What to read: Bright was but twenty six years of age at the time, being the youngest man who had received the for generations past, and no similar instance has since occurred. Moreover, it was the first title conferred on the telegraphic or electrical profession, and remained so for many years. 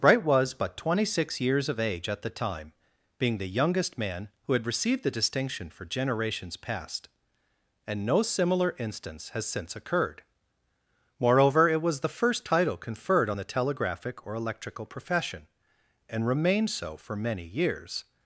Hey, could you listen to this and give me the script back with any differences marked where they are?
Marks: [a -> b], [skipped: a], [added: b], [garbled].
Bright was but twenty six years of age at the time, being the youngest man who had received the [added: distinction] for generations past, and no similar instance has since occurred. Moreover, it was the first title conferred on the telegraphic or electrical profession, and remained so for many years.